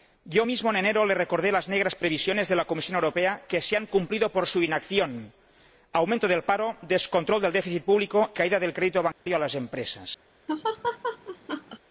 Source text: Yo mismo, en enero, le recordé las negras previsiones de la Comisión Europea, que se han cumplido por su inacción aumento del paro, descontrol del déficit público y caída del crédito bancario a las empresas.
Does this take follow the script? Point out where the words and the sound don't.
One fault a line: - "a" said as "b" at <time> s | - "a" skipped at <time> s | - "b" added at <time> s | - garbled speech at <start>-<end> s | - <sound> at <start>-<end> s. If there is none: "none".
- "y" skipped at 8.3 s
- dropout at 9.1-9.3 s
- laugh at 10.5-11.8 s